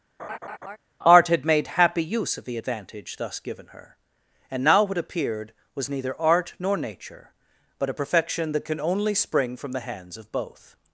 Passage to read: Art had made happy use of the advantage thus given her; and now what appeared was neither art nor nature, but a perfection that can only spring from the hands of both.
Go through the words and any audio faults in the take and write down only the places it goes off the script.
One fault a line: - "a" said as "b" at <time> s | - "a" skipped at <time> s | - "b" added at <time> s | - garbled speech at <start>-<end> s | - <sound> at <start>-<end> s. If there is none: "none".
- laugh at 0.2-0.8 s